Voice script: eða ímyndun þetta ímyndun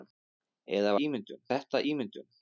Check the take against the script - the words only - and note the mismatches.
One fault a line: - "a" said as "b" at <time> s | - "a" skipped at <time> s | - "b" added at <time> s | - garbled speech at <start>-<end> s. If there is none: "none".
none